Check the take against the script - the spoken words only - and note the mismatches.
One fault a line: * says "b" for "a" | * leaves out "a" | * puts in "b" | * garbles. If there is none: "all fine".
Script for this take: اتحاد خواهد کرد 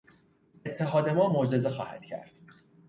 * puts in "ما معجزه"